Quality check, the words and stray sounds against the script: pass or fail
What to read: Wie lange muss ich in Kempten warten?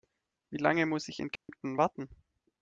fail